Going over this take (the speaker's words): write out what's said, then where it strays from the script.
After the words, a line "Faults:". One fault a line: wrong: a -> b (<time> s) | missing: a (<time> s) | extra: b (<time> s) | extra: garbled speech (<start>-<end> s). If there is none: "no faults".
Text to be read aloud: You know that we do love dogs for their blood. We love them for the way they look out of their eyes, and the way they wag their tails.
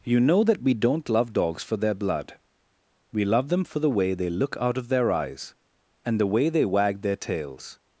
You know that we don't love dogs for their blood. We love them for the way they look out of their eyes, and the way they wag their tails.
Faults:
wrong: do -> don't (0.7 s)